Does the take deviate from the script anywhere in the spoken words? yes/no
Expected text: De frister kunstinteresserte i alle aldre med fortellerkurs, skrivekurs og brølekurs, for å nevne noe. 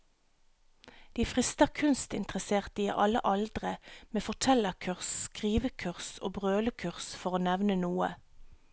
no